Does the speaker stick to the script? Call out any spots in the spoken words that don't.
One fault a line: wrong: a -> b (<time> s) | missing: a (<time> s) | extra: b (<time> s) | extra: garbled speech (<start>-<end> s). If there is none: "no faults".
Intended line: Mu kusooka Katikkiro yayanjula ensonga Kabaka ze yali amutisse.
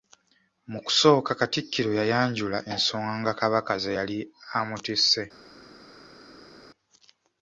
no faults